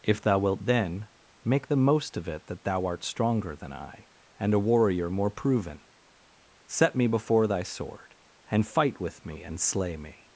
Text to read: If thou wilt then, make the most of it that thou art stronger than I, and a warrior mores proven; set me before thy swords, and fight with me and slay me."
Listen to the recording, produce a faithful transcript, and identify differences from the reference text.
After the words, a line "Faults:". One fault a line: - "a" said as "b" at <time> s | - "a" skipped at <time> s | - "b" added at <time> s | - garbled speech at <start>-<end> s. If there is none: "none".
If thou wilt then, make the most of it that thou art stronger than I, and a warrior more proven; set me before thy sword, and fight with me and slay me."
Faults:
- "mores" said as "more" at 5.1 s
- "swords" said as "sword" at 7.6 s